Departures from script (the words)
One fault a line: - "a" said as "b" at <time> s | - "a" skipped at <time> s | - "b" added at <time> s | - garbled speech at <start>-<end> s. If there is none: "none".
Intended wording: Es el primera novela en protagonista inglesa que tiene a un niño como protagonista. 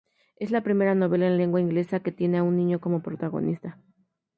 - "el" said as "la" at 0.5 s
- "protagonista" said as "lengua" at 1.4 s